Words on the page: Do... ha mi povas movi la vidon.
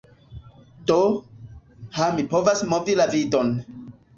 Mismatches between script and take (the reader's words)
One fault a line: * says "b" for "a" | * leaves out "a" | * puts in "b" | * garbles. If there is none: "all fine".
all fine